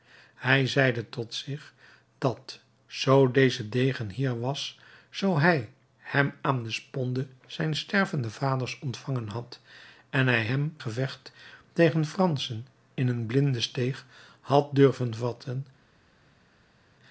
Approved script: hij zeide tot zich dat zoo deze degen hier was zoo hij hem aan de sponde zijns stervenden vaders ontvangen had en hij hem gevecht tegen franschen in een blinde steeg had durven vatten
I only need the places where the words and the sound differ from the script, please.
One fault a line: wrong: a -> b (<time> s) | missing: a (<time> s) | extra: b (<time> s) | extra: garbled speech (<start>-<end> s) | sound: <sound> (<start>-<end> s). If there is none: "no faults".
no faults